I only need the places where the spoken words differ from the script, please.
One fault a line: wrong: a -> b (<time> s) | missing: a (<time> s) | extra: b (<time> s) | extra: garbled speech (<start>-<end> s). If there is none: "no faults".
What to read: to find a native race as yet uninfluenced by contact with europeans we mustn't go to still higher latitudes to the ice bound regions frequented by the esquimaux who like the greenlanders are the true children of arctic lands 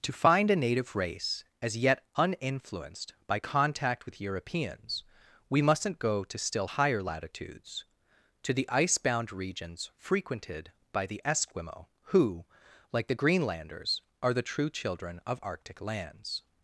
no faults